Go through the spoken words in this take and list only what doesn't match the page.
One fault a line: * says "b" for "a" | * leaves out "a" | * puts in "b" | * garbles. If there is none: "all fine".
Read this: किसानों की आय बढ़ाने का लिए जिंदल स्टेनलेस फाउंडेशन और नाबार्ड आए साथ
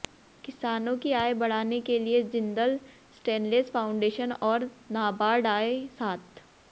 * says "के" for "का"